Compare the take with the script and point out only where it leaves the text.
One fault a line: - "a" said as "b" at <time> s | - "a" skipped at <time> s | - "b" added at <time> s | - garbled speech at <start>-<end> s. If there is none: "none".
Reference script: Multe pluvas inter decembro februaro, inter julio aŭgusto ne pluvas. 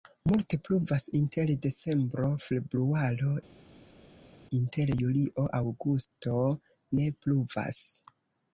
none